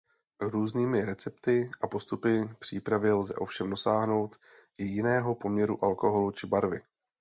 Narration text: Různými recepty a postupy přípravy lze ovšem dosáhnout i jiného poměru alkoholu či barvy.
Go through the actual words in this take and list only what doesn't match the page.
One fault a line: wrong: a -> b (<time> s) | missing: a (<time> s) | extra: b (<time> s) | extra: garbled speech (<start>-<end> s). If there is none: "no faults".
no faults